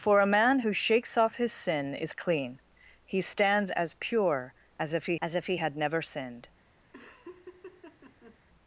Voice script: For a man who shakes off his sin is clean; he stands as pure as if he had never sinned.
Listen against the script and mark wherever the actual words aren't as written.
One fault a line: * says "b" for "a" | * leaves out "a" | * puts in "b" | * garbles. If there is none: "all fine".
* puts in "as if he"